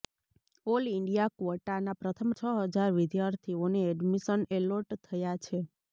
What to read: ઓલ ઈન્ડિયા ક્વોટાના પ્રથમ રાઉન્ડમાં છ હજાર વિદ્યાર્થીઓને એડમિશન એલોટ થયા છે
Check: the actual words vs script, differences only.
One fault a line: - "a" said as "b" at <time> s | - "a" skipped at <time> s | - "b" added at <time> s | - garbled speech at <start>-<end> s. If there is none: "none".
- "રાઉન્ડમાં" skipped at 2.3 s